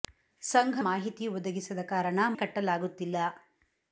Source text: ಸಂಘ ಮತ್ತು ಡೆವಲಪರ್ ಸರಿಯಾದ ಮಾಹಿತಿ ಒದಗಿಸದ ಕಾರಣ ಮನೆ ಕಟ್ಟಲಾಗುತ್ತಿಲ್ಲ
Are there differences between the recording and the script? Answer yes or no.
yes